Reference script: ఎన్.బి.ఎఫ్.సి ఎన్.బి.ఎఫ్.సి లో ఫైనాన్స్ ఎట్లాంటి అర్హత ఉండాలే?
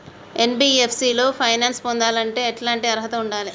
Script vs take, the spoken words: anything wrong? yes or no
yes